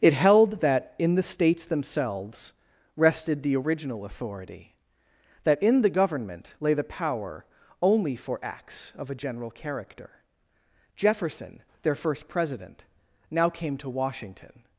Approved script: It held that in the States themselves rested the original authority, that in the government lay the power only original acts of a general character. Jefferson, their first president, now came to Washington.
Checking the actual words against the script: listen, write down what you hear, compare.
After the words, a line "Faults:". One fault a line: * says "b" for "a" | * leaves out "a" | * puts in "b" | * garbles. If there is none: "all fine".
It held that in the States themselves rested the original authority, that in the government lay the power only for acts of a general character. Jefferson, their first president, now came to Washington.
Faults:
* says "for" for "original"